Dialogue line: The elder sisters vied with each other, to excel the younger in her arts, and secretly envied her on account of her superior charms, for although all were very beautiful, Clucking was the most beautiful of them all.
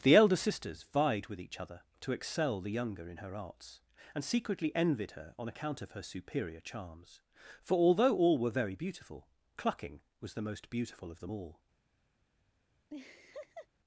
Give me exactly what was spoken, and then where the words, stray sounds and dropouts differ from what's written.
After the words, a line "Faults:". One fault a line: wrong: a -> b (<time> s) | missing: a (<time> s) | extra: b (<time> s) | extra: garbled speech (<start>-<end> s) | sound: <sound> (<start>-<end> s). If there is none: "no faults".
The elder sisters vied with each other, to excel the younger in her arts, and secretly envied her on account of her superior charms, for although all were very beautiful, Clucking was the most beautiful of them all.
Faults:
sound: laugh (12.9-13.7 s)